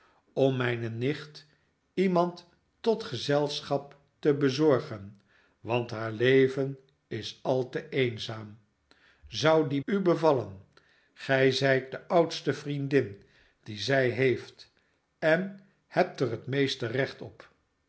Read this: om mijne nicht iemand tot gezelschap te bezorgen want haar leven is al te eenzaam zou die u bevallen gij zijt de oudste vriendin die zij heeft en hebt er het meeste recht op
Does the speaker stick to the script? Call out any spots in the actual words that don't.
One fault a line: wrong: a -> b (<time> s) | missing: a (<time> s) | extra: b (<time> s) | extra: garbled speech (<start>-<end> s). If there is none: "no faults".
no faults